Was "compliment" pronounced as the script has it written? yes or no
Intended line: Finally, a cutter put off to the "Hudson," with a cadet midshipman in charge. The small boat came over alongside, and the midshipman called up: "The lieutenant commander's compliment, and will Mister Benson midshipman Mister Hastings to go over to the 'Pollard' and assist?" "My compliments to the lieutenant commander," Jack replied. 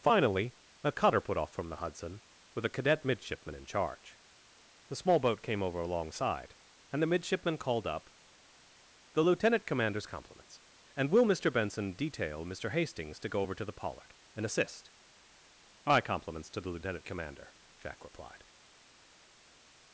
no